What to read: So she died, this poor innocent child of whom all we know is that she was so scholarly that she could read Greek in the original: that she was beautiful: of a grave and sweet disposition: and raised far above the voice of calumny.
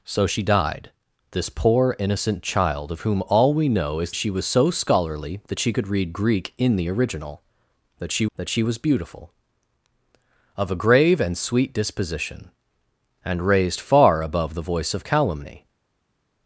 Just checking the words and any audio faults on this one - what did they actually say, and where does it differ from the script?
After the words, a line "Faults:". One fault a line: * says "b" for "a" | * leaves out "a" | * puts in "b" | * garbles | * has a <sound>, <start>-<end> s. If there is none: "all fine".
So she died, this poor innocent child of whom all we know is she was so scholarly that she could read Greek in the original: that she that she was beautiful: of a grave and sweet disposition: and raised far above the voice of calumny.
Faults:
* leaves out "that"
* puts in "that she"